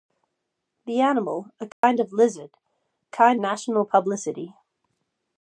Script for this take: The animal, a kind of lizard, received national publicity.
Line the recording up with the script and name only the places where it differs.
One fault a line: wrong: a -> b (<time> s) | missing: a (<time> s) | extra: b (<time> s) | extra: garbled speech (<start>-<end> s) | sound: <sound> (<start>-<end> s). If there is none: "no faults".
sound: dropout (1.7-1.8 s)
wrong: received -> kind (3.1 s)